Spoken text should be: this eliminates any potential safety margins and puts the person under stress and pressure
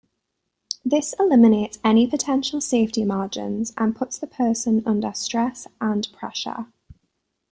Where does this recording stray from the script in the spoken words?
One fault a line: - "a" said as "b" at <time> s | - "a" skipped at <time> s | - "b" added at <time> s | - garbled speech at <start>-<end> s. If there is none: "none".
none